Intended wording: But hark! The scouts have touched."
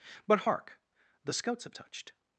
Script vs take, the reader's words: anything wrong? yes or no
no